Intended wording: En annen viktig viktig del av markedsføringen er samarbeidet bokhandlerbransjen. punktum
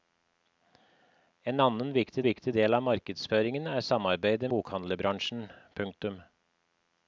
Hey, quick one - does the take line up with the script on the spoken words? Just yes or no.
yes